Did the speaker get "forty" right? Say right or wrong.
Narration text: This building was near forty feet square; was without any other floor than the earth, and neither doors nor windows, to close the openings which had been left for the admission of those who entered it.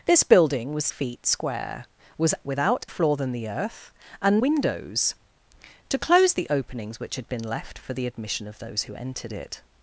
wrong